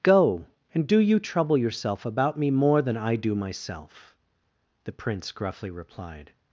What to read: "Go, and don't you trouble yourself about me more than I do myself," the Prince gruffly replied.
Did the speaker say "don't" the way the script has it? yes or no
no